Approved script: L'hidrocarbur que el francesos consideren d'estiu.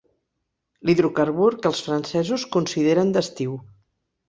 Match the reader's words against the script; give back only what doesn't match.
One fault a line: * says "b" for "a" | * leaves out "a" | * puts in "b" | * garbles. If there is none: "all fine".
* says "els" for "el"